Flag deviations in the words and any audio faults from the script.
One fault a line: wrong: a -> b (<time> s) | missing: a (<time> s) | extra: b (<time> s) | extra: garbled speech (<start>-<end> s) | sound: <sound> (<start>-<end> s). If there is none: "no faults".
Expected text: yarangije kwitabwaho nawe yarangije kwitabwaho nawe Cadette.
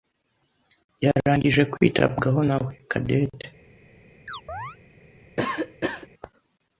missing: yarangije kwitabwaho nawe (2.7 s)
sound: chirp (4.3-4.8 s)
sound: cough (5.4-6.1 s)